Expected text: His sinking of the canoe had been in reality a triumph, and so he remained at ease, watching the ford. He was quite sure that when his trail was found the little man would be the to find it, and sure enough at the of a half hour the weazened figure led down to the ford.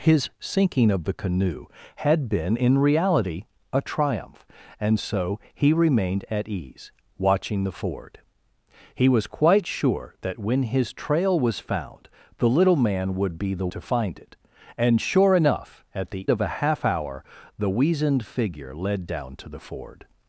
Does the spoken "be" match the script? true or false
true